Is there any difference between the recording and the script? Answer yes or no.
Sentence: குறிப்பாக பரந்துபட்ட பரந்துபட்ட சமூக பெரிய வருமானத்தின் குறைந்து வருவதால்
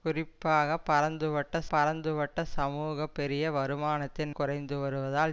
no